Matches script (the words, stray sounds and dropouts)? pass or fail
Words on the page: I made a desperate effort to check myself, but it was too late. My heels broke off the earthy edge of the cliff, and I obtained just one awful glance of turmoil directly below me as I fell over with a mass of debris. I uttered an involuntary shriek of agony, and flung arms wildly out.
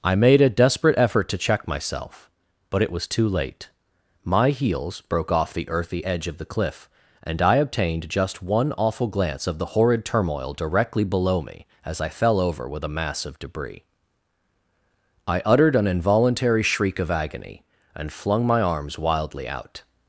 fail